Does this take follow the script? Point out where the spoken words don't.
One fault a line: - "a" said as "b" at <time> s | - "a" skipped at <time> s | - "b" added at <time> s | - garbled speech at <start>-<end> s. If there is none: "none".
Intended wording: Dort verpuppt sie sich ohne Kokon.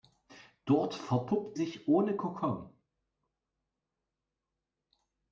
- "sie" skipped at 1.6 s